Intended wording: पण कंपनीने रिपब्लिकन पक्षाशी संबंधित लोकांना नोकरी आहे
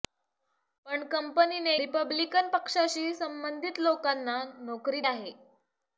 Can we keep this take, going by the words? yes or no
yes